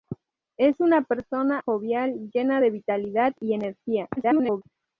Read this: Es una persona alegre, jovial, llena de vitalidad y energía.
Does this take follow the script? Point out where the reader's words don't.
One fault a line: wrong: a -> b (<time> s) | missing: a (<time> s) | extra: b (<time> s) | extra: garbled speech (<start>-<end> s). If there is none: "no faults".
missing: alegre (1.6 s)
extra: garbled speech (4.2-4.6 s)